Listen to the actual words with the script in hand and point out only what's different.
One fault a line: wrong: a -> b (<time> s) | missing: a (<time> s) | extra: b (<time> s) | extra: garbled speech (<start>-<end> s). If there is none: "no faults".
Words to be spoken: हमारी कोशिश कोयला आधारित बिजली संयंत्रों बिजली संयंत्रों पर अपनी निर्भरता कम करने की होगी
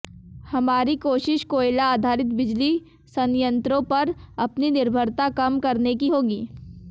missing: बिजली संयंत्रों (3.8 s)